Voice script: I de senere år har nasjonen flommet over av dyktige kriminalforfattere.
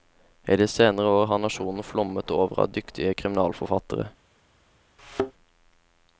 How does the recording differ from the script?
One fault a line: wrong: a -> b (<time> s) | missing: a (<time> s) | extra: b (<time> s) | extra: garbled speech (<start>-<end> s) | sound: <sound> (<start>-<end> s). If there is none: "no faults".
sound: thud (5.0-5.3 s)